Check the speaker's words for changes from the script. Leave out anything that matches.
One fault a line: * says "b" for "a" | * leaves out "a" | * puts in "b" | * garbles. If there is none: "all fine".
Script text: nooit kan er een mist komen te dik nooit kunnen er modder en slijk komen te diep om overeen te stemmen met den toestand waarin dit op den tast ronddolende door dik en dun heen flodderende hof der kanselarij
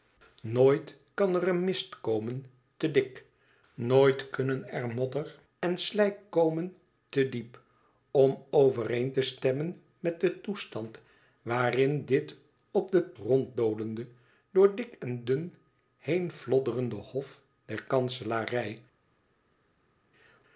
* leaves out "tast"